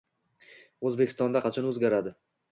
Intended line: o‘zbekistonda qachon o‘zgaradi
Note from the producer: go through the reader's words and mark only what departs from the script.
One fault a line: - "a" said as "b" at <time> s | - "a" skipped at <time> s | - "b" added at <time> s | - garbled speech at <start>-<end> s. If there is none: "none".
none